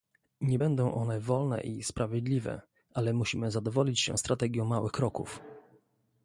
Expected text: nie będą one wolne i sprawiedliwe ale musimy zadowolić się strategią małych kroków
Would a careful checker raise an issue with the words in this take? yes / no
no